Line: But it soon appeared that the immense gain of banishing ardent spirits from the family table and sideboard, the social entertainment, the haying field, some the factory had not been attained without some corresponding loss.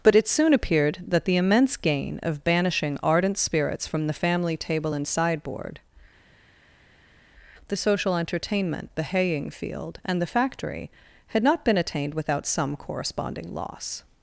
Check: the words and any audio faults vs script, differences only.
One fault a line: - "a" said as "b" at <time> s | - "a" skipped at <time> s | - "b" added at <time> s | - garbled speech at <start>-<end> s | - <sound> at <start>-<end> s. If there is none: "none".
- "some" said as "and" at 10.1 s